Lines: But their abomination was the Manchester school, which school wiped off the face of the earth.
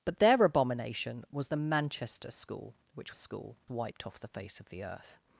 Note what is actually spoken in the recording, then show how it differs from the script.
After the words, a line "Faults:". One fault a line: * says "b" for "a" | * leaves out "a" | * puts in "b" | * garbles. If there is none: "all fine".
But their abomination was the Manchester school, which school wiped off the face of the earth.
Faults:
all fine